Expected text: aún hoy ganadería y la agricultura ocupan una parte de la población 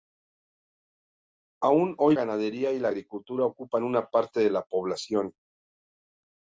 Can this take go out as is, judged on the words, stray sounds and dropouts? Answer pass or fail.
pass